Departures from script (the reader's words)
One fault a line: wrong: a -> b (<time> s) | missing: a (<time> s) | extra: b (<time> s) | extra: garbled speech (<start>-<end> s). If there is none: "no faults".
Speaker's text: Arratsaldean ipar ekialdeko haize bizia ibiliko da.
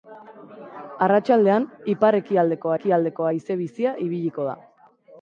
extra: ekialdeko (2.8 s)